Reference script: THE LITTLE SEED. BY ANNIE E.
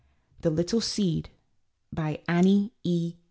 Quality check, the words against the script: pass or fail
pass